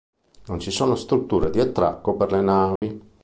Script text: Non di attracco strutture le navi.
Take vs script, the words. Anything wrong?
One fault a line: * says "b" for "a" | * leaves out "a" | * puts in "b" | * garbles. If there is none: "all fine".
* puts in "ci sono strutture"
* says "per" for "strutture"